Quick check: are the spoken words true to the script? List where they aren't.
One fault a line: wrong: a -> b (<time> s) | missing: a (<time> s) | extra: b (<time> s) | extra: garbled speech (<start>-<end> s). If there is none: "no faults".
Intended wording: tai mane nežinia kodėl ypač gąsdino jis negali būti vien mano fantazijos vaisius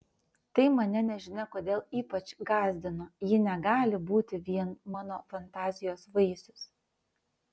wrong: jis -> ji (3.3 s)